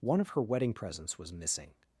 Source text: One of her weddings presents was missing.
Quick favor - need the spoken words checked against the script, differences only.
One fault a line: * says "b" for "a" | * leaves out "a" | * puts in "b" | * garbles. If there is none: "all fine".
* says "wedding" for "weddings"